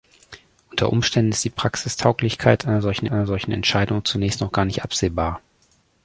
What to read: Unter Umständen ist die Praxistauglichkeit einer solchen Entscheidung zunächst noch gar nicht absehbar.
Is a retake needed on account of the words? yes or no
yes